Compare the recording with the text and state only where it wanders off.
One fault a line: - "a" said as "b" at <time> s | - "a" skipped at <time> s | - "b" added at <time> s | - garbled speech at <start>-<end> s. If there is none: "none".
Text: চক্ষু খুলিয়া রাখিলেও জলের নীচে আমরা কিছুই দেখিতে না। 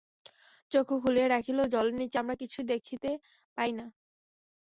- "পাই" added at 3.6 s